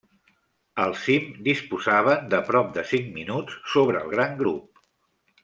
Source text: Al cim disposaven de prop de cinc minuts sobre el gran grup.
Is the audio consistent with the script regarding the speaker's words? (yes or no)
yes